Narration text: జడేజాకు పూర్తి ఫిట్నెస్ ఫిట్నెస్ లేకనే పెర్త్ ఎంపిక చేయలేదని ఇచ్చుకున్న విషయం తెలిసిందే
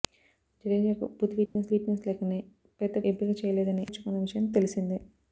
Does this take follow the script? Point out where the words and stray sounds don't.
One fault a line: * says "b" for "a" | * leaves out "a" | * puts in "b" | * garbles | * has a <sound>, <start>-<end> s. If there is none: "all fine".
* has a dropout, 1.5-1.6 s